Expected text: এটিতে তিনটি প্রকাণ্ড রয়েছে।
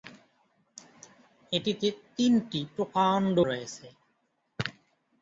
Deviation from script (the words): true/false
false